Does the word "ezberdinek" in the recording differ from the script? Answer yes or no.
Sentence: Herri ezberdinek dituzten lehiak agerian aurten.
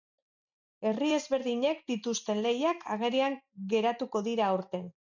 no